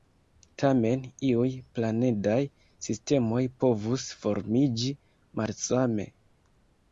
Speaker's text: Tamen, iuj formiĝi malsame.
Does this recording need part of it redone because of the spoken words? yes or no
yes